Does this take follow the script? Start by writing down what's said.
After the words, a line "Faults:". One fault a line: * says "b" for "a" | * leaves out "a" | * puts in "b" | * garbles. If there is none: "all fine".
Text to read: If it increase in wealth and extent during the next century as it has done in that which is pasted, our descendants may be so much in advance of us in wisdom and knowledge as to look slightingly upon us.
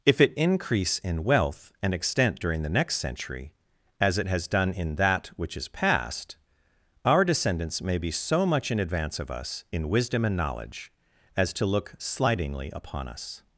If it increase in wealth and extent during the next century as it has done in that which is past, our descendants may be so much in advance of us in wisdom and knowledge as to look slightingly upon us.
Faults:
* says "past" for "pasted"